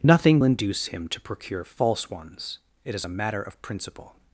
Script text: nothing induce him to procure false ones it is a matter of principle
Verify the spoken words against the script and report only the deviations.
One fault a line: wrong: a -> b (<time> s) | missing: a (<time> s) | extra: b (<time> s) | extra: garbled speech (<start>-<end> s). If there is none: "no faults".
no faults